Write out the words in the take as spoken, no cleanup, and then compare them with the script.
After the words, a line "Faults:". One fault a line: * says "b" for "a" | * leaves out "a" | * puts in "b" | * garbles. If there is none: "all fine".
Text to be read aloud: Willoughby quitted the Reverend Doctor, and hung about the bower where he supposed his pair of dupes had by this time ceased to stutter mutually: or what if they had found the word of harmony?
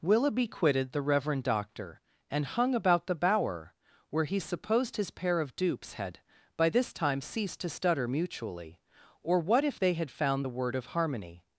Willoughby quitted the Reverend Doctor, and hung about the bower where he supposed his pair of dupes had by this time ceased to stutter mutually: or what if they had found the word of harmony?
Faults:
all fine